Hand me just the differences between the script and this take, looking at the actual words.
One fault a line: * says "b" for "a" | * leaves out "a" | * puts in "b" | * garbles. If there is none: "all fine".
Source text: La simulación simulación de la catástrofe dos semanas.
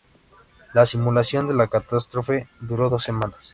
* leaves out "simulación"
* puts in "duró"